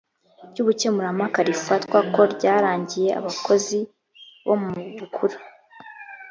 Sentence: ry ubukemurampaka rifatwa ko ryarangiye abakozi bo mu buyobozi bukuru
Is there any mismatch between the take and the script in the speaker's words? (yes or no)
yes